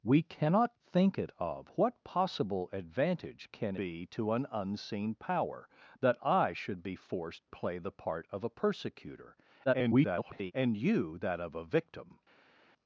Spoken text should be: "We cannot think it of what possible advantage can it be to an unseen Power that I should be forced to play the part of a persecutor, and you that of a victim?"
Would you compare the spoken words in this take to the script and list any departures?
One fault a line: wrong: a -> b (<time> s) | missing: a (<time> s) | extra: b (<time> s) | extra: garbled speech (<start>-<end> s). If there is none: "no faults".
missing: it (3.8 s)
missing: to (7.4 s)
extra: garbled speech (9.7-10.5 s)